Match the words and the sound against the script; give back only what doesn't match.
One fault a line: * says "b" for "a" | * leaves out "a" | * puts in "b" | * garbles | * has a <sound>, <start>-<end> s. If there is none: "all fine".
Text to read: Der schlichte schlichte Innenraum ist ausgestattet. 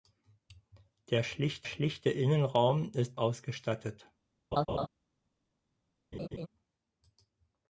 * has a laugh, 4.5-4.9 s
* has a laugh, 6.1-6.5 s